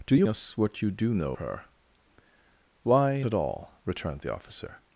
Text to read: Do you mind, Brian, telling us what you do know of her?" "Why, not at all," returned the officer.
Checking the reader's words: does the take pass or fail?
fail